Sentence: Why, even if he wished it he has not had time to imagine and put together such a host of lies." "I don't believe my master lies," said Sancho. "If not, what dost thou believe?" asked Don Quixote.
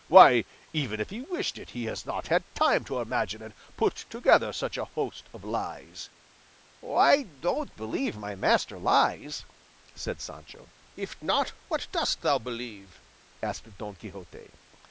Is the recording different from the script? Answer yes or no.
no